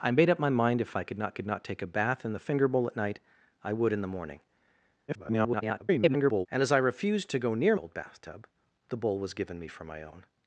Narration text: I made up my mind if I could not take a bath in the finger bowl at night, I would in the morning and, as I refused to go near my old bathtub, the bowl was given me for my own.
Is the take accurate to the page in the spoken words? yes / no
no